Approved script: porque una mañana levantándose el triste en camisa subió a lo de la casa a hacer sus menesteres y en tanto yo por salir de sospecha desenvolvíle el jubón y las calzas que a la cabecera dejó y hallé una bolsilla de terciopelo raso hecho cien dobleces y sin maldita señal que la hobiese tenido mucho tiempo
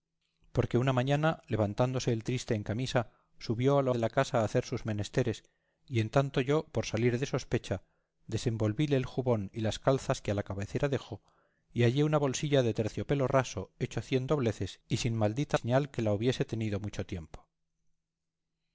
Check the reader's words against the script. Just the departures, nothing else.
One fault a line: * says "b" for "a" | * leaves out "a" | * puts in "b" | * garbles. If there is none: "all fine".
all fine